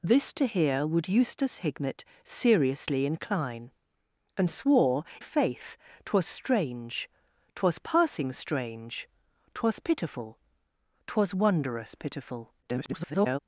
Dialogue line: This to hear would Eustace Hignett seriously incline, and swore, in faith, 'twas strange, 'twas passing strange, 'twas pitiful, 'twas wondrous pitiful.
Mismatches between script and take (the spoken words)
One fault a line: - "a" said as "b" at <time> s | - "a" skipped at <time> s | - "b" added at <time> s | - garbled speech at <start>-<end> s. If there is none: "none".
- "in" skipped at 5.0 s
- garbled speech at 12.6-13.4 s